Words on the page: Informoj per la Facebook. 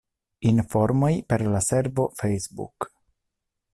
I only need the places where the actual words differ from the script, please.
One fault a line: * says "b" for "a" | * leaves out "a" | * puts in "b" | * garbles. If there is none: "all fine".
* puts in "servo"